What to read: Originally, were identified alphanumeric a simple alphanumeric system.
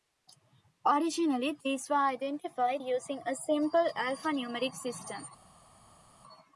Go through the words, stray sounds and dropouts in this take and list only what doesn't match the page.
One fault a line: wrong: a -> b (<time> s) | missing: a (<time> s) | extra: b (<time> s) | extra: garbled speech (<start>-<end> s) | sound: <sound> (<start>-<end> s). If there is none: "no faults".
extra: these (1.6 s)
wrong: alphanumeric -> using (2.8 s)